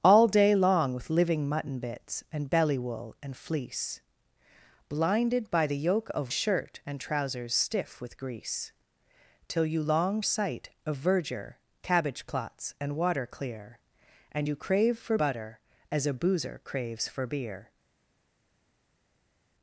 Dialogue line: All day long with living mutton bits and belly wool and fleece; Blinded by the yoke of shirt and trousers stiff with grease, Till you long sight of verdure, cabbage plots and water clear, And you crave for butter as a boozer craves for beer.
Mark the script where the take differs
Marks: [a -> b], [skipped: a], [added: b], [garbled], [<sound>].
All day long with living mutton bits and belly wool and fleece; Blinded by the yoke of shirt and trousers stiff with grease, Till you long sight of verdure, cabbage plots and water clear, And you crave for butter as a boozer craves for beer.